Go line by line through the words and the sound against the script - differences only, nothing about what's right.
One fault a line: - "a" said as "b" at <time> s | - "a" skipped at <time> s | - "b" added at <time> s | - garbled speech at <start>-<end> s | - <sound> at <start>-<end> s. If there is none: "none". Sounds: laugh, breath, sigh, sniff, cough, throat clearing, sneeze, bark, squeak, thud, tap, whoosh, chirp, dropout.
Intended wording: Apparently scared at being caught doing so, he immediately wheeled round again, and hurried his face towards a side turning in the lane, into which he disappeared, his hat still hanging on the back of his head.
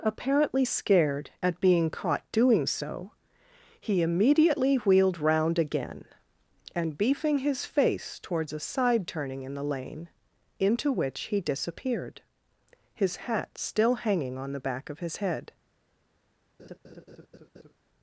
- "hurried" said as "beefing" at 7.0 s
- laugh at 16.6-17.7 s